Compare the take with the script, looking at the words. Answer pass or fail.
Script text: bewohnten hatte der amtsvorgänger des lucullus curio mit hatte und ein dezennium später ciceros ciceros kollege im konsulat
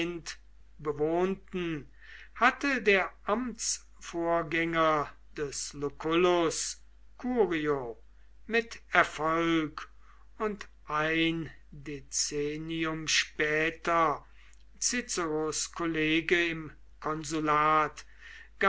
fail